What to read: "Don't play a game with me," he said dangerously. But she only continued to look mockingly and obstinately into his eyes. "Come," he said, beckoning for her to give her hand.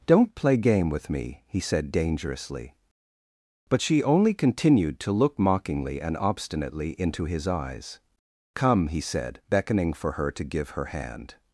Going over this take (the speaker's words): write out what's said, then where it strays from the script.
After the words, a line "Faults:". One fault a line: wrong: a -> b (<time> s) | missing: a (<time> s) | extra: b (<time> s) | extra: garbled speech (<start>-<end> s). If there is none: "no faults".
"Don't play game with me," he said dangerously. But she only continued to look mockingly and obstinately into his eyes. "Come," he said, beckoning for her to give her hand.
Faults:
missing: a (0.6 s)